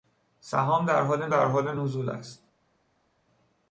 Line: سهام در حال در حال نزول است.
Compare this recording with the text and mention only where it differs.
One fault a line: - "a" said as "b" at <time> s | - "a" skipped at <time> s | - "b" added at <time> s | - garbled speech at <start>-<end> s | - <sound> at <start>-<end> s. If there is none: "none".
none